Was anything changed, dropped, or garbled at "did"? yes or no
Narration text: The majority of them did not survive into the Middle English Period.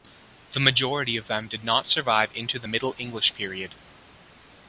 no